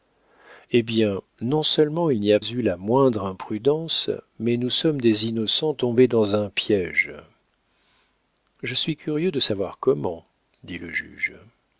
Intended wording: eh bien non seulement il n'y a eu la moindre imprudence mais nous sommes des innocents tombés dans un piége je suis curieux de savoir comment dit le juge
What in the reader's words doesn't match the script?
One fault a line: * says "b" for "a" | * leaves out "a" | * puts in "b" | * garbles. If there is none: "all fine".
all fine